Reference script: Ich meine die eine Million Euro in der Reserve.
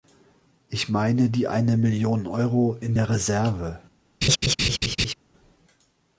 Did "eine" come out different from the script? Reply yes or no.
no